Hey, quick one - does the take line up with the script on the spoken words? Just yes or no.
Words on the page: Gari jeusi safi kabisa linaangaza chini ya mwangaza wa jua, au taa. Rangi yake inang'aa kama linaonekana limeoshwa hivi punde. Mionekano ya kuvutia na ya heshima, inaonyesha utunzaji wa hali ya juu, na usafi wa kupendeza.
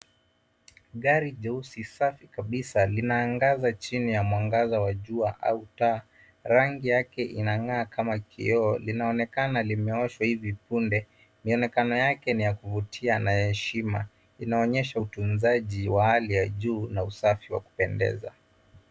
no